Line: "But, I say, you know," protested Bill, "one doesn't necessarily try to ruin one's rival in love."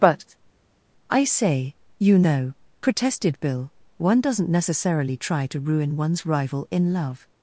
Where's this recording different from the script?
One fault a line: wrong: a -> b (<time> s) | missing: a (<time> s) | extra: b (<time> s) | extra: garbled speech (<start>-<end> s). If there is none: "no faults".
no faults